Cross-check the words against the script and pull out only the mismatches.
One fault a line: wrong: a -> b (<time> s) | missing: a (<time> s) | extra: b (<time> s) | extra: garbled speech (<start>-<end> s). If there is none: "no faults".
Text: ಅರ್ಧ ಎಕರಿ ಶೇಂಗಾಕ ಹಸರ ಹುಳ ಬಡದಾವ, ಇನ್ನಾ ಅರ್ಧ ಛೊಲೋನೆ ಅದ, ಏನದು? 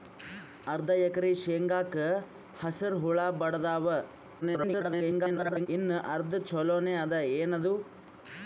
extra: garbled speech (4.4-5.7 s)